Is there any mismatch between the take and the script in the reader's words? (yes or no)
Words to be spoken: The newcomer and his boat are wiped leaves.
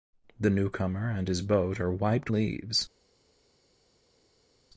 no